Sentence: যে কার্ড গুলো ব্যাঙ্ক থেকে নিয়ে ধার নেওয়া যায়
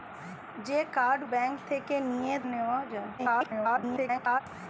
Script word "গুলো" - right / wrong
wrong